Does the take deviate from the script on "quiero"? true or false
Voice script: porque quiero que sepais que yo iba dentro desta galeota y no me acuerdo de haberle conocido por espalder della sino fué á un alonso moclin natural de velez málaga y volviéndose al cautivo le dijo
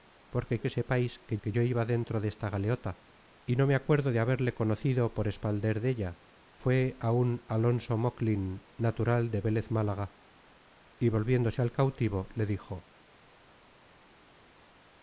true